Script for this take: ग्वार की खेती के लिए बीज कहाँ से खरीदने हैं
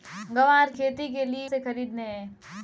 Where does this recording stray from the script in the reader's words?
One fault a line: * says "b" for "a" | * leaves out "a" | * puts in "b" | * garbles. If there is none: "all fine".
* leaves out "की"
* leaves out "बीज कहाँ"